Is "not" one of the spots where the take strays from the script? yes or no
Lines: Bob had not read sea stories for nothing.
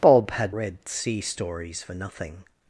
yes